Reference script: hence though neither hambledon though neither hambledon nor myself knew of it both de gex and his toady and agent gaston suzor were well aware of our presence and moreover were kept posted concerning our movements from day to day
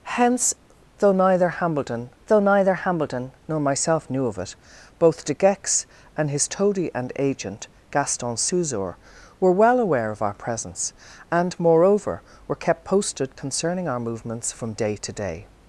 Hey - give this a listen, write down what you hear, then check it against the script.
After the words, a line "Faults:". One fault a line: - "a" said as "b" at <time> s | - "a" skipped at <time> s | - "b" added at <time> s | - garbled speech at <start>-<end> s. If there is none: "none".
hence though neither hambledon though neither hambledon nor myself knew of it both de gex and his toady and agent gaston suzor were well aware of our presence and moreover were kept posted concerning our movements from day to day
Faults:
none